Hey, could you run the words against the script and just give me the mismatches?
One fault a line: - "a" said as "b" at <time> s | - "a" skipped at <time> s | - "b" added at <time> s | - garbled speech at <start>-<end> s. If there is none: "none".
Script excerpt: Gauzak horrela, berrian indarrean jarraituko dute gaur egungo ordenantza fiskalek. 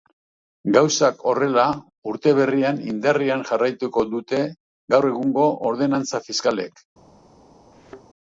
- "urte" added at 2.1 s